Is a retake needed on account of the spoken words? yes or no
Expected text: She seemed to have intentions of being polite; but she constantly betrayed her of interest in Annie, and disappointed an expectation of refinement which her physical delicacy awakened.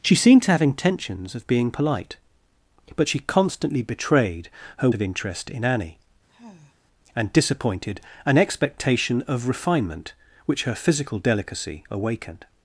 no